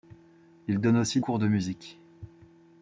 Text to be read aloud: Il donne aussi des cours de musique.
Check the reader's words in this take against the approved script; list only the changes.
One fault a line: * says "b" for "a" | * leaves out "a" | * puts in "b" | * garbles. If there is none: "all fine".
* leaves out "des"